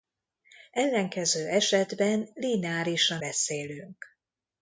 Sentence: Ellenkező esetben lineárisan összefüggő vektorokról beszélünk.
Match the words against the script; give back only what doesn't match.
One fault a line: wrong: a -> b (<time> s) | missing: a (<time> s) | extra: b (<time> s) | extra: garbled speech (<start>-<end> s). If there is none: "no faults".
missing: összefüggő vektorokról (3.2 s)